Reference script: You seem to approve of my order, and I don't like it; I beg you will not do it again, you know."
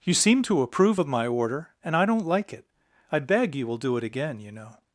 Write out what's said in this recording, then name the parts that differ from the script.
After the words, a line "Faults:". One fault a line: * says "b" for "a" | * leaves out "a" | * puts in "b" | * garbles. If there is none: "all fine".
You seem to approve of my order, and I don't like it; I beg you will do it again, you know."
Faults:
* leaves out "not"